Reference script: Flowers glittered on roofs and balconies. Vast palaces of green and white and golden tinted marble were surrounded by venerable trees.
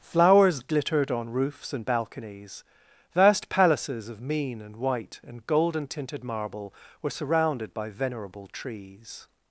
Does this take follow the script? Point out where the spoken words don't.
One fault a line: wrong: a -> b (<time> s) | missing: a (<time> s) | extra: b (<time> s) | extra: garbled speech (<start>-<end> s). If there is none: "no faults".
wrong: green -> mean (4.2 s)